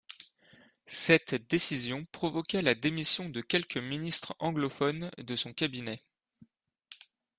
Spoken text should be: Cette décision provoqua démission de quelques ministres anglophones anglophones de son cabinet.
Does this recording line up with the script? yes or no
no